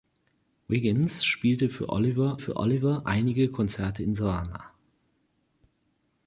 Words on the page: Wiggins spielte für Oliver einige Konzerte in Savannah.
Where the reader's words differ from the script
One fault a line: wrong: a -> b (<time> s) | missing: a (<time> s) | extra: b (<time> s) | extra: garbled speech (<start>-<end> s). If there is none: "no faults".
extra: für Oliver (2.4 s)